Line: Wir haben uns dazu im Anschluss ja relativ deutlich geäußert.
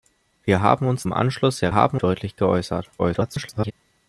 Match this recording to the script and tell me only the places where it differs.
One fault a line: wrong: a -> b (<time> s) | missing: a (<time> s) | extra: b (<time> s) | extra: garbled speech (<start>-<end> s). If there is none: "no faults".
missing: dazu (1.1 s)
wrong: relativ -> haben (1.7 s)
extra: garbled speech (3.0-3.7 s)